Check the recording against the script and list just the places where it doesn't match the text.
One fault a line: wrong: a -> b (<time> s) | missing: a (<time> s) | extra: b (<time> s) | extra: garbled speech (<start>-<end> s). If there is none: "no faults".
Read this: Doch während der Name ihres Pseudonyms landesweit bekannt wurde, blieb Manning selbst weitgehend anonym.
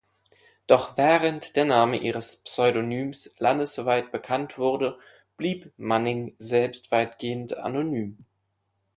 no faults